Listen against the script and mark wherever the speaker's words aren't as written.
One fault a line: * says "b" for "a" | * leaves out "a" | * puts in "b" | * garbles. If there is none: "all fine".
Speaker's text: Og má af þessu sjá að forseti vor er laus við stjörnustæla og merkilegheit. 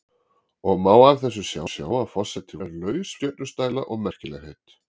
* puts in "sjá"
* leaves out "vor"
* leaves out "við"